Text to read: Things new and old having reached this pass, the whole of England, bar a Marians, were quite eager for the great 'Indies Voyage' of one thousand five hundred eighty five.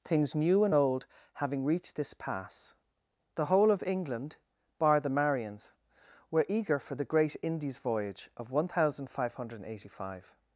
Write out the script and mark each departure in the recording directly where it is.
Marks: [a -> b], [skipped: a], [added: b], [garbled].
Things new and old having reached this pass, the whole of England, bar [a -> the] Marians, were [skipped: quite] eager for the great 'Indies Voyage' of one thousand five hundred eighty five.